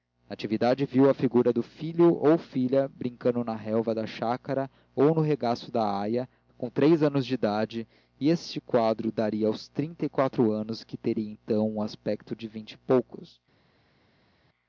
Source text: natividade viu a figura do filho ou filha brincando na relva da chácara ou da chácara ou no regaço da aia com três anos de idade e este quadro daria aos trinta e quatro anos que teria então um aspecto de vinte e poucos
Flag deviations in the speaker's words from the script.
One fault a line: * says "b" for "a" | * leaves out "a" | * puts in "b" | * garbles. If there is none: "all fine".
* leaves out "da chácara ou"